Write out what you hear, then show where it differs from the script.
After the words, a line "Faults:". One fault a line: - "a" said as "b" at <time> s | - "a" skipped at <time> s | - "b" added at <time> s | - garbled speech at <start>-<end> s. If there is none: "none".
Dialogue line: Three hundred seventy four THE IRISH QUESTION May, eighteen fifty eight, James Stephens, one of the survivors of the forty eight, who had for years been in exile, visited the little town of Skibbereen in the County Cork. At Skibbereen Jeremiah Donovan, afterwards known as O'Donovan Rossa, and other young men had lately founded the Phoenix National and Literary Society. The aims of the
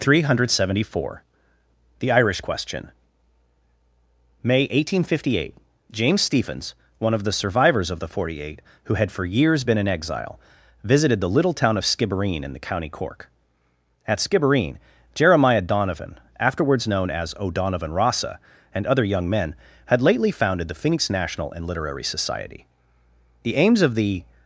Three hundred seventy four THE IRISH QUESTION May, eighteen fifty eight, James Stephens, one of the survivors of the forty eight, who had for years been in exile, visited the little town of Skibbereen in the County Cork. At Skibbereen Jeremiah Donovan, afterwards known as O'Donovan Rossa, and other young men had lately founded the Phoenix National and Literary Society. The aims of the
Faults:
none